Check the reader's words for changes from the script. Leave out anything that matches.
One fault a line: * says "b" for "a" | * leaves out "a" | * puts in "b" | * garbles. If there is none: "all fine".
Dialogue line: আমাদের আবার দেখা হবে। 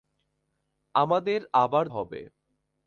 * leaves out "দেখা"